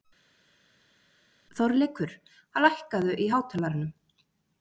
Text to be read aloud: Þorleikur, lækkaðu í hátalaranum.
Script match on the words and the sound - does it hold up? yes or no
yes